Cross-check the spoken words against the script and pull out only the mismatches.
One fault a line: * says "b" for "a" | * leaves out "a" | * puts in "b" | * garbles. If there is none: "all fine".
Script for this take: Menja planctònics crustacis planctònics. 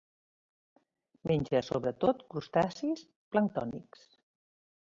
* says "sobretot" for "planctònics"